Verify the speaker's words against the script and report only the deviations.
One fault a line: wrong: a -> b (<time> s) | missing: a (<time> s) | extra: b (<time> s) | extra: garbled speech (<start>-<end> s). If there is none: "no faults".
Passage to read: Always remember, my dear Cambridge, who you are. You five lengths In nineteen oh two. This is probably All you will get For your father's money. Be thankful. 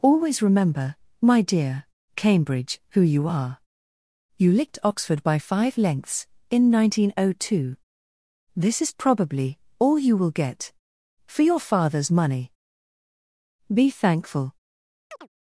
extra: licked Oxford by (4.5 s)